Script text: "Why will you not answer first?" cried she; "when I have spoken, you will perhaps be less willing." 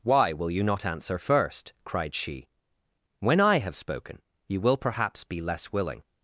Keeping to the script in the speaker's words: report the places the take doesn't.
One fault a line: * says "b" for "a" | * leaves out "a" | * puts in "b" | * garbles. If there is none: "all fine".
all fine